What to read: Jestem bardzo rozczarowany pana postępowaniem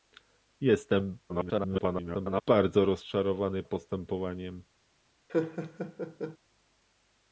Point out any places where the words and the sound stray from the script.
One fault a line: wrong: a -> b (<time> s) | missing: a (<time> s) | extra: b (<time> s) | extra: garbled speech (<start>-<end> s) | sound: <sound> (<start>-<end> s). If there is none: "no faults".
extra: garbled speech (1.3-2.4 s)
missing: pana (3.6 s)
sound: laugh (5.3-6.4 s)